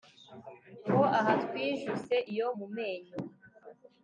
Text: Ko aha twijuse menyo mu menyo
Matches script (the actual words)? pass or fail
fail